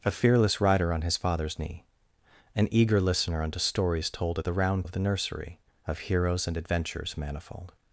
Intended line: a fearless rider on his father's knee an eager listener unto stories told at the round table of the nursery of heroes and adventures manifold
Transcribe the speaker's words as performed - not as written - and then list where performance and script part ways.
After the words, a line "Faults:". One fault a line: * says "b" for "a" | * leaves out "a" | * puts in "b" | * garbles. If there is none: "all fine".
a fearless rider on his father's knee an eager listener unto stories told at the round of the nursery of heroes and adventures manifold
Faults:
* leaves out "table"